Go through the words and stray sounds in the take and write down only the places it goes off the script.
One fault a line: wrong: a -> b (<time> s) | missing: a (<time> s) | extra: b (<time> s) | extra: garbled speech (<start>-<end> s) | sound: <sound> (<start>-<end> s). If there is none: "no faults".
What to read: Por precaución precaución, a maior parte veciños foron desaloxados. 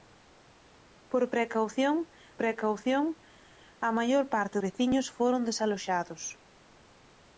no faults